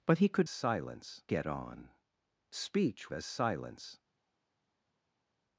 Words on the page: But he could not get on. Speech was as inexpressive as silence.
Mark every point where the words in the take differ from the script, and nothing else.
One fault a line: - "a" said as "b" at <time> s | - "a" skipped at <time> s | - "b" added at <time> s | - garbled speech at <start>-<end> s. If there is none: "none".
- "not" said as "silence" at 0.5 s
- "was as inexpressive" skipped at 3.1 s